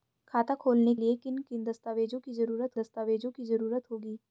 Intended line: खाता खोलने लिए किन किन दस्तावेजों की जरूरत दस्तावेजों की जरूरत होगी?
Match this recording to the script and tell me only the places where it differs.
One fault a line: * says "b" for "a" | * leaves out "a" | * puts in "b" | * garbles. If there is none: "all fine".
all fine